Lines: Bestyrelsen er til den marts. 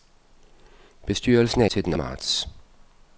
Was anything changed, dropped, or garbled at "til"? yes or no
no